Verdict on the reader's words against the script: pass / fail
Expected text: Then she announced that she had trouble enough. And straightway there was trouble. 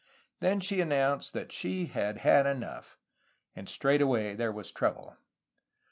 fail